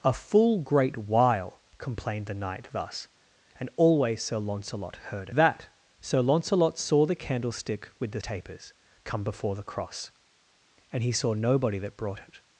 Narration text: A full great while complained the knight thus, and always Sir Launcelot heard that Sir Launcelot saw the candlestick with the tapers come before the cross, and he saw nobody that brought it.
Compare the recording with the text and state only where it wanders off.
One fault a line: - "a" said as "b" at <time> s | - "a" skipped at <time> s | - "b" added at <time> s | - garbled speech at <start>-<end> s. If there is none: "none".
none